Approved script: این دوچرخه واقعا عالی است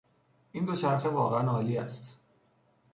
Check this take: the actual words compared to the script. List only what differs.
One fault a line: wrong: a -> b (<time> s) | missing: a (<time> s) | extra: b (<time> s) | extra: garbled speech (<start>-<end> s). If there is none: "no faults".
no faults